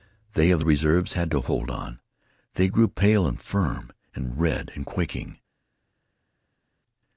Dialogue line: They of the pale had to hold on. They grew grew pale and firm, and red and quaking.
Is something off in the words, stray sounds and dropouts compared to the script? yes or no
yes